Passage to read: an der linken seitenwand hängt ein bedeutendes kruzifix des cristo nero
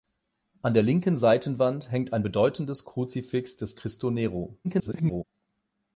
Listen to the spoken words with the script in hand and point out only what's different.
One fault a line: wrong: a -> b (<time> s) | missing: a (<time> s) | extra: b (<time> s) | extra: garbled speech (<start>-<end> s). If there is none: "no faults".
extra: garbled speech (4.6-5.2 s)